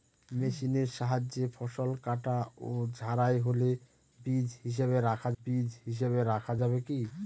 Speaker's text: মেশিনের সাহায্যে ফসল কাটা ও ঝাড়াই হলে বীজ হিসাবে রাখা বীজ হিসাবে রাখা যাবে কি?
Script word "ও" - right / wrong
right